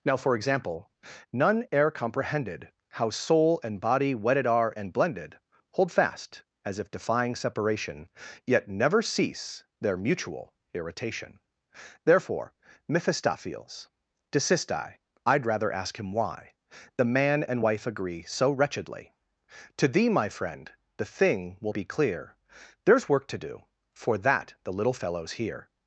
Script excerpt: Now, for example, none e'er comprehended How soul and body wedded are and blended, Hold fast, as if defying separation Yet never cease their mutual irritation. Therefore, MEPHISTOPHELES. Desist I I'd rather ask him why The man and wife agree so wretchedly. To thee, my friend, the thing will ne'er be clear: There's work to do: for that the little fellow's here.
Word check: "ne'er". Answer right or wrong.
wrong